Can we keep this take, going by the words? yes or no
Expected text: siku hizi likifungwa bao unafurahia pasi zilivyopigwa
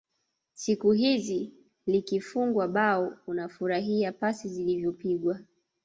yes